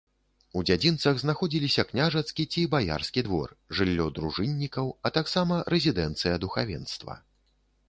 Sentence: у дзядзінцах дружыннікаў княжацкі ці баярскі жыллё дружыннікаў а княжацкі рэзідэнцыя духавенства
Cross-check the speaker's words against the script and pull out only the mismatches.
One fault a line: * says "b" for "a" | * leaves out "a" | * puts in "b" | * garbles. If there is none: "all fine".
* says "знаходзіліся" for "дружыннікаў"
* puts in "двор"
* says "таксама" for "княжацкі"